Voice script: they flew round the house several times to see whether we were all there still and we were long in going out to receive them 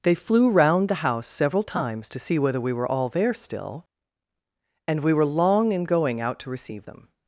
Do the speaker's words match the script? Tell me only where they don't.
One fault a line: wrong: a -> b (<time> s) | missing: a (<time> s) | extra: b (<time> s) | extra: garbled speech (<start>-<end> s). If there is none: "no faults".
no faults